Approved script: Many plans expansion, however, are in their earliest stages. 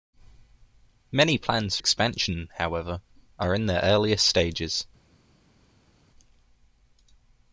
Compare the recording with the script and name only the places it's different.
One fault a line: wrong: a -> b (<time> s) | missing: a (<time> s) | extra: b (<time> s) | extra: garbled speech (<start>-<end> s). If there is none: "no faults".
no faults